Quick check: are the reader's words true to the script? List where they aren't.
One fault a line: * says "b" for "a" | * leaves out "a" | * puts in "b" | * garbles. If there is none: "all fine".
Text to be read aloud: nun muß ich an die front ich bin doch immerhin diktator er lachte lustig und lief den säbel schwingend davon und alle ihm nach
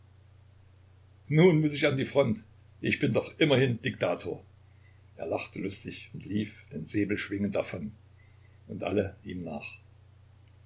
all fine